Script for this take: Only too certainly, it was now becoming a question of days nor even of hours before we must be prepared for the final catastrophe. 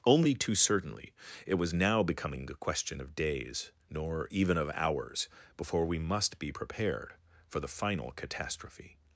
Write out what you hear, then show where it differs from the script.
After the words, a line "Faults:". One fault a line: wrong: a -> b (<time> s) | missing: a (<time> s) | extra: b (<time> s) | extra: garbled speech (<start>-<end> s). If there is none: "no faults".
Only too certainly, it was now becoming a question of days nor even of hours before we must be prepared for the final catastrophe.
Faults:
no faults